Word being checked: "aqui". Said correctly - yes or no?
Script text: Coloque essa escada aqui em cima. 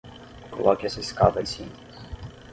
no